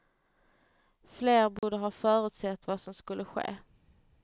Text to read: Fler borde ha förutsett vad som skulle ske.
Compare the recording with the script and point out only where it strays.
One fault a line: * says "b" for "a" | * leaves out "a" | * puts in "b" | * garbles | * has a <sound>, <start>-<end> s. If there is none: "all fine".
* has a dropout, 1.6-1.6 s